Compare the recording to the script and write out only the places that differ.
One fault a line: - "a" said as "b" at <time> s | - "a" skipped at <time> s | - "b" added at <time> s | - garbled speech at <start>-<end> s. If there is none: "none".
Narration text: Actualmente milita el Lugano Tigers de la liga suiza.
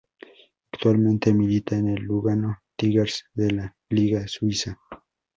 - "en" added at 1.8 s